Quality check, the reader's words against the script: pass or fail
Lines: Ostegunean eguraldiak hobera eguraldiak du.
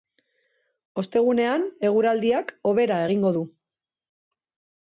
fail